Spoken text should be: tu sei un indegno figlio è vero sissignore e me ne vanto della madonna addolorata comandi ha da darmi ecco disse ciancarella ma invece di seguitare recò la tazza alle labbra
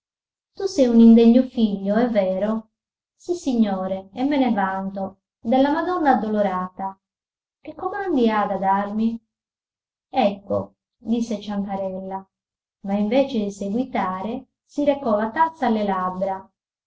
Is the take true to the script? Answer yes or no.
no